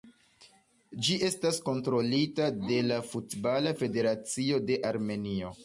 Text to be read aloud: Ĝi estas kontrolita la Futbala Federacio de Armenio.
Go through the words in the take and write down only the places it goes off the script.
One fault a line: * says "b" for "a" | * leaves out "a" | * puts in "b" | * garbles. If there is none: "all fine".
* puts in "de"